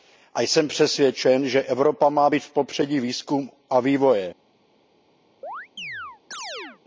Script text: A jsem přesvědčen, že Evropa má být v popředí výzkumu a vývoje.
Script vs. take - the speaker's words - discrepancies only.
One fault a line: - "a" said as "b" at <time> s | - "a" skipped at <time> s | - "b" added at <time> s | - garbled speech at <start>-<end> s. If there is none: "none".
none